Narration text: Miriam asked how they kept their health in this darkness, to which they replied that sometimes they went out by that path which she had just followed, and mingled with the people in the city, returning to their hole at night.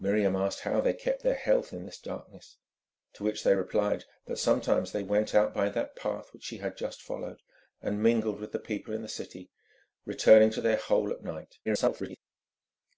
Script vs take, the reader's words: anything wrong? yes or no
yes